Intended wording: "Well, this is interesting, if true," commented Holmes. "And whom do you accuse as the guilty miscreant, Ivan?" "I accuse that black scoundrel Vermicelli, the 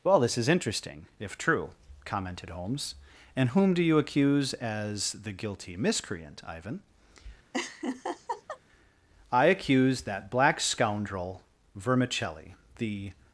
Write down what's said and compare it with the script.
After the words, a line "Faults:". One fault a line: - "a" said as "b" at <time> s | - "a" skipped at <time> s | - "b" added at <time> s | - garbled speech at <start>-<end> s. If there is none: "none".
"Well, this is interesting, if true," commented Holmes. "And whom do you accuse as the guilty miscreant, Ivan?" "I accuse that black scoundrel Vermicelli, the
Faults:
none